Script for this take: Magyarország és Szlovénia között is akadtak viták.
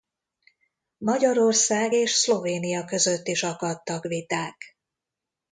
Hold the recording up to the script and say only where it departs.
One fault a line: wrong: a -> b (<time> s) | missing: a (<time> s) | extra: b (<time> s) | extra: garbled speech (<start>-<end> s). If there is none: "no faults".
no faults